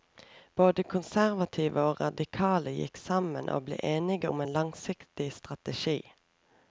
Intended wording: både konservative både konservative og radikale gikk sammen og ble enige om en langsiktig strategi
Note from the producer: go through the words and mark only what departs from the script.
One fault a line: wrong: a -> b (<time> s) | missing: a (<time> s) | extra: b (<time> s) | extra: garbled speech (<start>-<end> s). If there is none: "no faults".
missing: både konservative (1.8 s)